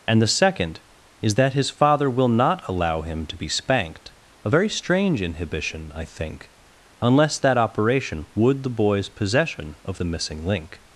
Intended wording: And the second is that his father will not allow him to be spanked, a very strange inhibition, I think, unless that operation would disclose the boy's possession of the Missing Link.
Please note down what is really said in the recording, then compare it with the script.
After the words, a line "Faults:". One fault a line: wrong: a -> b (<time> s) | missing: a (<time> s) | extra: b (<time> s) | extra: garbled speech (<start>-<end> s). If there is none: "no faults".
And the second is that his father will not allow him to be spanked, a very strange inhibition, I think, unless that operation would the boy's possession of the Missing Link.
Faults:
missing: disclose (8.6 s)